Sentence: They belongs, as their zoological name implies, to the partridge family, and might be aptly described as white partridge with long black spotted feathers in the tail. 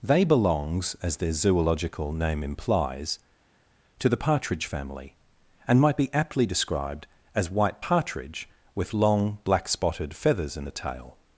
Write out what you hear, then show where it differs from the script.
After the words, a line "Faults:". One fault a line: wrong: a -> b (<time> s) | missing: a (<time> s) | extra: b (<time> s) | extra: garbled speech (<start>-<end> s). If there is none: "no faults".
They belongs, as their zoological name implies, to the partridge family, and might be aptly described as white partridge with long black spotted feathers in the tail.
Faults:
no faults